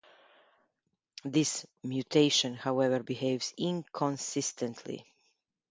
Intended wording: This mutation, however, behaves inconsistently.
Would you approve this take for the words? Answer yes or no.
yes